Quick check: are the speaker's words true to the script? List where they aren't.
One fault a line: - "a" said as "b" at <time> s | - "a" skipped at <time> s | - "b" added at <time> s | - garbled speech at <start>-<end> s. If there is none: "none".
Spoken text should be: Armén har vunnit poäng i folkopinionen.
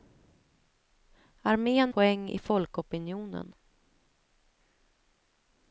- "har vunnit" skipped at 1.9 s